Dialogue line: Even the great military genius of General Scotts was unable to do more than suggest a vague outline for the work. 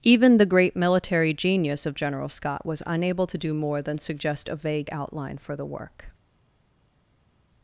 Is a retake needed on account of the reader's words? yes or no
yes